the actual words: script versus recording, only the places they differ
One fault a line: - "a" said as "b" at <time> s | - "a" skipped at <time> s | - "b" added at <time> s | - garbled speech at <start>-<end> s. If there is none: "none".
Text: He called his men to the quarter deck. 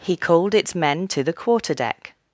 - "his" said as "its" at 0.6 s